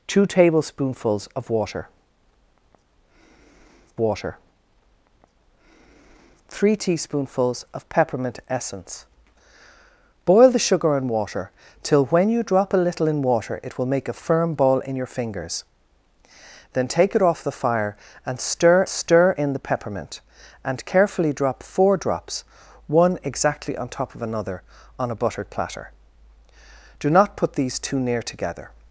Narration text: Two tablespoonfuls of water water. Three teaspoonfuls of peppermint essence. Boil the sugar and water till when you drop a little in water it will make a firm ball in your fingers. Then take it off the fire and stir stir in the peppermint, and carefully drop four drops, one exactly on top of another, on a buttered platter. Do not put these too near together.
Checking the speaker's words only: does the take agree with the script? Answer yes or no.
yes